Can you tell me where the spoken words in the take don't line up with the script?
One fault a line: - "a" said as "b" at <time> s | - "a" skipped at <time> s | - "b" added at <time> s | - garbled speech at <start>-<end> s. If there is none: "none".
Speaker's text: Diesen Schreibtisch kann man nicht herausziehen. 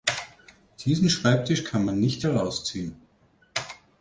none